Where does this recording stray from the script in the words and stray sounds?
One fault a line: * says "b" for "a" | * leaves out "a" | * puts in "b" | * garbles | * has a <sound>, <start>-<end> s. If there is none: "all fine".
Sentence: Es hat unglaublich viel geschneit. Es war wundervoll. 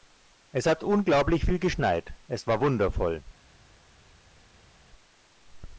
all fine